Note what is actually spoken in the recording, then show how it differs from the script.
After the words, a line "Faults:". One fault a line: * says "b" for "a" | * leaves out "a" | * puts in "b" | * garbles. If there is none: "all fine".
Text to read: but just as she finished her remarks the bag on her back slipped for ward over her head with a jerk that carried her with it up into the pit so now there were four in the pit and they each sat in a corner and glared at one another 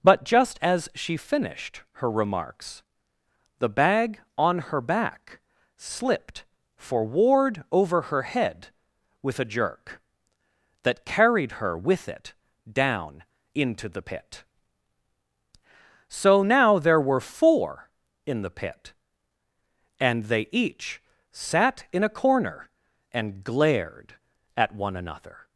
but just as she finished her remarks the bag on her back slipped for ward over her head with a jerk that carried her with it down into the pit so now there were four in the pit and they each sat in a corner and glared at one another
Faults:
* says "down" for "up"